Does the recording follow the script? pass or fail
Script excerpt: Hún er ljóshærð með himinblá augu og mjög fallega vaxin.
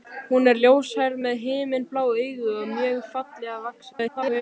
fail